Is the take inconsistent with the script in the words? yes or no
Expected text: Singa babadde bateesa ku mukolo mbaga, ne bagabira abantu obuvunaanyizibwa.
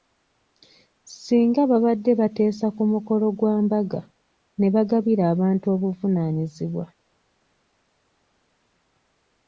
yes